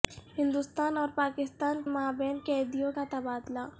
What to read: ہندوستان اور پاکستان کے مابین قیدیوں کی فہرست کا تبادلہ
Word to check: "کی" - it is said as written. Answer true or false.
false